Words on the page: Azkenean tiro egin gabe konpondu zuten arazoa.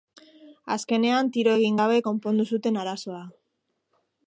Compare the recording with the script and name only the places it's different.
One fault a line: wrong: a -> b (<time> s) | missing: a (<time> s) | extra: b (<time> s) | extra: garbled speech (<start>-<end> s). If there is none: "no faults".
no faults